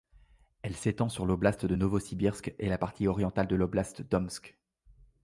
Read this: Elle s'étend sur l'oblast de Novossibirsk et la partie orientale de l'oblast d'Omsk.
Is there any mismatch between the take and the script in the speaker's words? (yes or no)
no